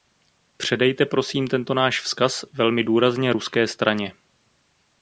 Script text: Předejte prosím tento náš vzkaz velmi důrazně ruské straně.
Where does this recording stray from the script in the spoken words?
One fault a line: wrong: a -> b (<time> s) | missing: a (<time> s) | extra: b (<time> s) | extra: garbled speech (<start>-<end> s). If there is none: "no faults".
no faults